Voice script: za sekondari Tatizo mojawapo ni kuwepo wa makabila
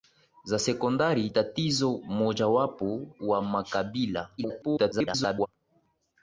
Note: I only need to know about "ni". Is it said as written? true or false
false